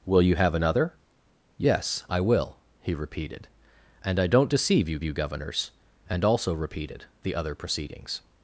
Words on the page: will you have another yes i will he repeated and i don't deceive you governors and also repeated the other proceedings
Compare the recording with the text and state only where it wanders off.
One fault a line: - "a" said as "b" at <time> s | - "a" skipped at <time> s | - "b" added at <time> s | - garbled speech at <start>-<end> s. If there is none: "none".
- "you" added at 5.0 s